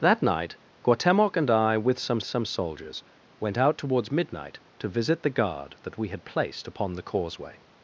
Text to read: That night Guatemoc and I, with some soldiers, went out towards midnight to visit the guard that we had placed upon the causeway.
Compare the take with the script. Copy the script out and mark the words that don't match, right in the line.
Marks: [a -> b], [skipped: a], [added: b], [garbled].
That night Guatemoc and I, with some [added: some] soldiers, went out towards midnight to visit the guard that we had placed upon the causeway.